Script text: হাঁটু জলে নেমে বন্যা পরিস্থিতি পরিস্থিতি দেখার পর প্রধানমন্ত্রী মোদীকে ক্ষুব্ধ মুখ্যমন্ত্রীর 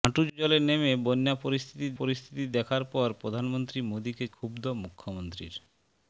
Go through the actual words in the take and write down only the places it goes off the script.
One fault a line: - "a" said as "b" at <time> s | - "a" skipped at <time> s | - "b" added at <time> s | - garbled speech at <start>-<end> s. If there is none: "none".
none